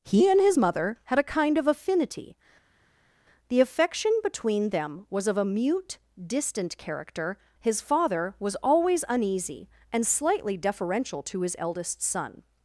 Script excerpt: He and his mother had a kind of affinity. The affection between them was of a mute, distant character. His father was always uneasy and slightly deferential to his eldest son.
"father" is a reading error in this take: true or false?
false